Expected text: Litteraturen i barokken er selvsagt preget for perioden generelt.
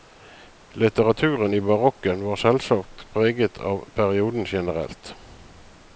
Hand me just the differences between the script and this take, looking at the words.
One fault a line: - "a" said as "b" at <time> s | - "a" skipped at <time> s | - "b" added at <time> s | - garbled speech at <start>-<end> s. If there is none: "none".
- "er" said as "var" at 2.2 s
- "for" said as "av" at 3.6 s